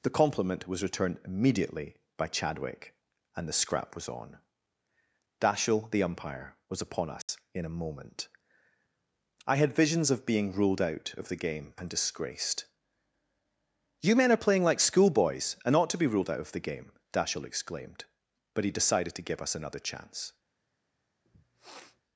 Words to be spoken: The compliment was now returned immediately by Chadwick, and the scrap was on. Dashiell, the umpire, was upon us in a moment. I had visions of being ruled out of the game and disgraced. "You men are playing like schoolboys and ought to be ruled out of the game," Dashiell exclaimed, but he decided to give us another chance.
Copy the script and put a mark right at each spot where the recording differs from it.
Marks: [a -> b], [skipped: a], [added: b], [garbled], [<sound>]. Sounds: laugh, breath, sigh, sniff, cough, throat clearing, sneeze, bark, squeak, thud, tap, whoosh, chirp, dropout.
The compliment was [skipped: now] returned immediately by Chadwick, and the scrap was on. Dashiell, the umpire, was upon us [dropout] in a moment. I had visions of being ruled out of the game and disgraced. "You men are playing like schoolboys and ought to be ruled out of the game," Dashiell exclaimed, but he decided to give us another chance. [sniff]